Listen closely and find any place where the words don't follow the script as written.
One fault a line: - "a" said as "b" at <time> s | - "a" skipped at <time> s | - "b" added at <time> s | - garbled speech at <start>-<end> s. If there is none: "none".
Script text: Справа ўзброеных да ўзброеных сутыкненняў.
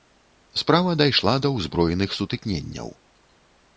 - "ўзброеных" said as "дайшла" at 1.0 s